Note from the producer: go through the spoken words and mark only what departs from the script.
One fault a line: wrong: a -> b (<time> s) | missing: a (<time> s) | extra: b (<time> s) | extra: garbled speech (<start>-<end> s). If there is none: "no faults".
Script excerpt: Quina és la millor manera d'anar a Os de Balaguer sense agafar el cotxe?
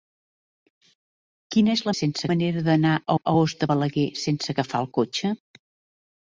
wrong: millor -> sense (2.0 s)
extra: a (3.2 s)